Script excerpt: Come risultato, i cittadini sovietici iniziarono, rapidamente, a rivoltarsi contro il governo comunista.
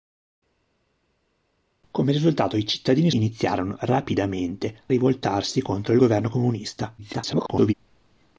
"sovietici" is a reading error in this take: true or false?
true